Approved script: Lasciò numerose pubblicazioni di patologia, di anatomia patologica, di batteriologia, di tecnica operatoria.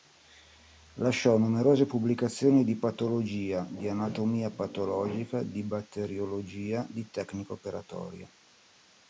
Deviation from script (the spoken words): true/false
false